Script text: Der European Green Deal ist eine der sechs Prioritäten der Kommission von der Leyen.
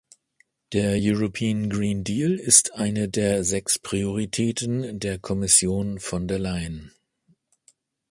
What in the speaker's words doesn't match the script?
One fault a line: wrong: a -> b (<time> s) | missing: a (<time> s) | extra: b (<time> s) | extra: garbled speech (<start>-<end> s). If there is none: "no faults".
no faults